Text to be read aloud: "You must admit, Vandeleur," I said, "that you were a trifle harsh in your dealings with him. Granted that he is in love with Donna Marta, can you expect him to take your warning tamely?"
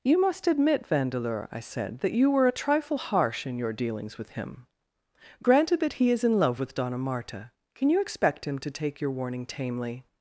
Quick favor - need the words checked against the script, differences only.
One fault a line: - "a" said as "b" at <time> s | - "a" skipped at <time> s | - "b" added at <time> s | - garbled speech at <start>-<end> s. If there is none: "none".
none